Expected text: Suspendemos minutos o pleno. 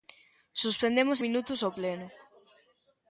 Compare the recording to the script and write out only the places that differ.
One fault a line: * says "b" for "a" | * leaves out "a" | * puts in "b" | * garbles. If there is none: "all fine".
all fine